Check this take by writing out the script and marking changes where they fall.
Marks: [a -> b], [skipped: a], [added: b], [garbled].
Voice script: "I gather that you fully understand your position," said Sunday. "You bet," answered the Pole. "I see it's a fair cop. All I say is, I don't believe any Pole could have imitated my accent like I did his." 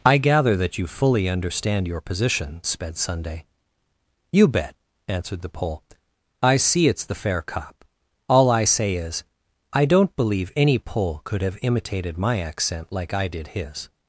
"I gather that you fully understand your position," [said -> sped] Sunday. "You bet," answered the Pole. "I see it's [a -> the] fair cop. All I say is, I don't believe any Pole could have imitated my accent like I did his."